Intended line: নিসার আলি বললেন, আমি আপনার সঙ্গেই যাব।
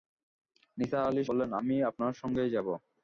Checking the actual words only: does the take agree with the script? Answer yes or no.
yes